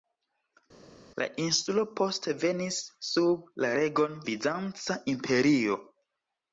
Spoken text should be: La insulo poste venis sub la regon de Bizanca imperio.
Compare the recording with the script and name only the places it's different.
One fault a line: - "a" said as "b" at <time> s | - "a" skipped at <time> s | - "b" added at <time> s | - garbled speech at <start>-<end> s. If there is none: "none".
- "de" skipped at 4.2 s